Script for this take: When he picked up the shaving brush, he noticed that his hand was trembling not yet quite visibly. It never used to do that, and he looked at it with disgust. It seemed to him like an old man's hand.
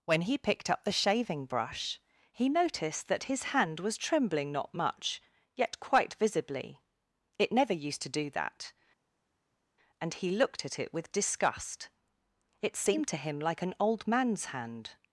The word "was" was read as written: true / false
true